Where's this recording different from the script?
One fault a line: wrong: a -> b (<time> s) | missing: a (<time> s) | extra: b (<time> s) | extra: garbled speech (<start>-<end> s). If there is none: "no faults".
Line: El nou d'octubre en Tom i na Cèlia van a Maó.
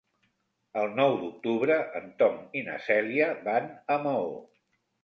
no faults